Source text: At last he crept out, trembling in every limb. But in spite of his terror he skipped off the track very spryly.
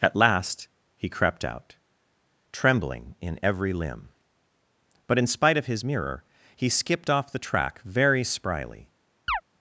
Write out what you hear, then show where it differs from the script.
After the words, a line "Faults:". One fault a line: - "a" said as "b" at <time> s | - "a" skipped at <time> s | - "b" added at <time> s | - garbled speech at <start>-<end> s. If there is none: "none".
At last he crept out, trembling in every limb. But in spite of his mirror he skipped off the track very spryly.
Faults:
- "terror" said as "mirror" at 5.8 s